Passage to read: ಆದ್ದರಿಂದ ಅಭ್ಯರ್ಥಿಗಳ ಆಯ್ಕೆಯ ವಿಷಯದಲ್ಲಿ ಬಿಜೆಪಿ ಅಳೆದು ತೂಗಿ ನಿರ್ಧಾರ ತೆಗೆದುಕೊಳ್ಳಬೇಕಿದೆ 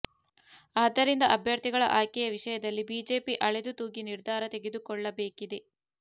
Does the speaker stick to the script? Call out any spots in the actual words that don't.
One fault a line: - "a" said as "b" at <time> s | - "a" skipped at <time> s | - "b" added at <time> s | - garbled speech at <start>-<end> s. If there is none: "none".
none